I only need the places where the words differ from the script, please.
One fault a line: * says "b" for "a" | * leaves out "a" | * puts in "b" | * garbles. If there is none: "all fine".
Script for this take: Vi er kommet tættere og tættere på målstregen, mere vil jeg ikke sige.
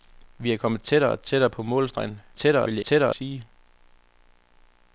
* says "tættere" for "mere"
* says "tættere" for "ikke"